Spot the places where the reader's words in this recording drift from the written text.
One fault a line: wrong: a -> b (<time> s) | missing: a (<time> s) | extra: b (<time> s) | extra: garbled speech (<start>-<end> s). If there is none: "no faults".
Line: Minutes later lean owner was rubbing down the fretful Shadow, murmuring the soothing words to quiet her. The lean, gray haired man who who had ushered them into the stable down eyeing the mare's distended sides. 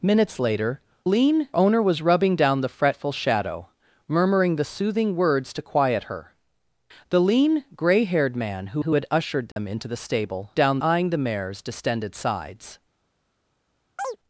no faults